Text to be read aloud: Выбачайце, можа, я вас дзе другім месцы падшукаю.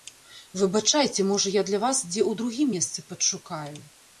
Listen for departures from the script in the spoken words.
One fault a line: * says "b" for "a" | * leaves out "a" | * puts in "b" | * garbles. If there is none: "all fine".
* puts in "для"
* puts in "ў"